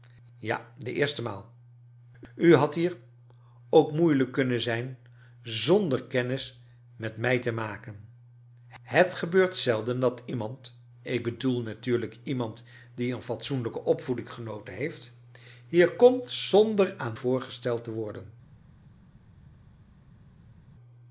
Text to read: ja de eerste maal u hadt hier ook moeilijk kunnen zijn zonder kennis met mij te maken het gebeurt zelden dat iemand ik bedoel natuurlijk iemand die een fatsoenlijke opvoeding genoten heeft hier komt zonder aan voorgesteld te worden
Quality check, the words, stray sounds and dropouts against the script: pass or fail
pass